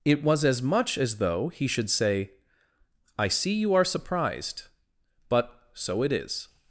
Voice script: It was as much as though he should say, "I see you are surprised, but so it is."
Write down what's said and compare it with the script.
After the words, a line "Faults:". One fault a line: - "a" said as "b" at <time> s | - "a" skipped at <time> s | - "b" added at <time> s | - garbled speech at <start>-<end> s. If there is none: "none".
It was as much as though he should say, "I see you are surprised, but so it is."
Faults:
none